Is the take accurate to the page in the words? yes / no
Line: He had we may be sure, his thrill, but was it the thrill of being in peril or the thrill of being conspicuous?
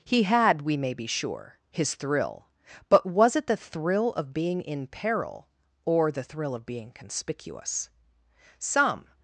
no